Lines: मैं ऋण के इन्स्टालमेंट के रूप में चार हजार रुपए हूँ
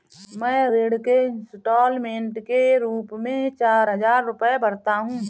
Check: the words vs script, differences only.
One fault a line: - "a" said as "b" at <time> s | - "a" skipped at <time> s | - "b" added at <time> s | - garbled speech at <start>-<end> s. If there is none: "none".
- "भरता" added at 4.6 s